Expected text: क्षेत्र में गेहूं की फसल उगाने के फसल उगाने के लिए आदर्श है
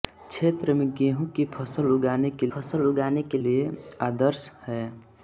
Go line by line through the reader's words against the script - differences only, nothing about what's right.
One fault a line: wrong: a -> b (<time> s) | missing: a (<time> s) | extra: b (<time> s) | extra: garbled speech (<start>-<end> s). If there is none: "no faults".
no faults